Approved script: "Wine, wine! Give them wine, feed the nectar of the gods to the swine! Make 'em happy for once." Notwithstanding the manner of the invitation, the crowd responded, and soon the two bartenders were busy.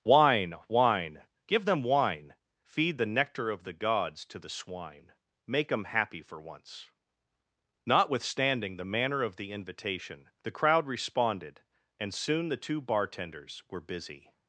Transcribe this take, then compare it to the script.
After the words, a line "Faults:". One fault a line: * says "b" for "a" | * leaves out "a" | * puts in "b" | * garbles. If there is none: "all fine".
"Wine, wine! Give them wine, feed the nectar of the gods to the swine! Make 'em happy for once." Notwithstanding the manner of the invitation, the crowd responded, and soon the two bartenders were busy.
Faults:
all fine